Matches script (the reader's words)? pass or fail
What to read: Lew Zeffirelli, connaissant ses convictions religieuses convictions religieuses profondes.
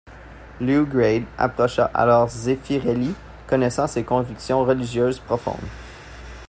fail